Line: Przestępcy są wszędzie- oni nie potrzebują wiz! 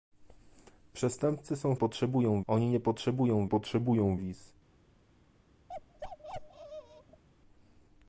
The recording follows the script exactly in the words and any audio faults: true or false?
false